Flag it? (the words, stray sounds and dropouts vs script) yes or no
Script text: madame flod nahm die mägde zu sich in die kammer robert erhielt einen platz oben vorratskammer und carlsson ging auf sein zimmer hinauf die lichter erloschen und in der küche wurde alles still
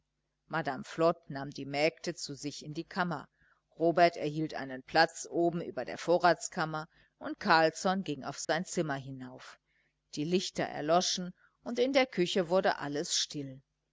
yes